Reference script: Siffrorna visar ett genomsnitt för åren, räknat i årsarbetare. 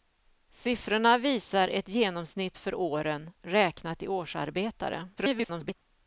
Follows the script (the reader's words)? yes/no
no